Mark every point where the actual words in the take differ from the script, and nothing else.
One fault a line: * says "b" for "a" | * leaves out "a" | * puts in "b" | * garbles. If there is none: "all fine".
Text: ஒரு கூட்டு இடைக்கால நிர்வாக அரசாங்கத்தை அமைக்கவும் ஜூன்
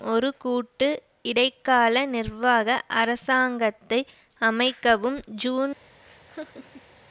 all fine